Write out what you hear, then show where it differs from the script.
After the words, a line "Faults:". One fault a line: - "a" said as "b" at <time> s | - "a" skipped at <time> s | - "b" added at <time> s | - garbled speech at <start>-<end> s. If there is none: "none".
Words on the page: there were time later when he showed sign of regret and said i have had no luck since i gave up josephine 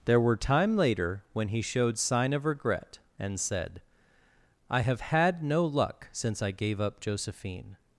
there were time later when he showed sign of regret and said i have had no luck since i gave up josephine
Faults:
none